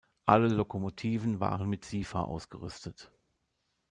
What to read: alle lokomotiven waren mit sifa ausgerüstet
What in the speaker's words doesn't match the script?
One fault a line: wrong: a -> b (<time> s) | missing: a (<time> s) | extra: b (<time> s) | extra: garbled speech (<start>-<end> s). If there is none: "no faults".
no faults